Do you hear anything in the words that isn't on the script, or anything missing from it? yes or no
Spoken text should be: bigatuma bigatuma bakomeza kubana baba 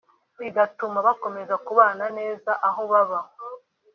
yes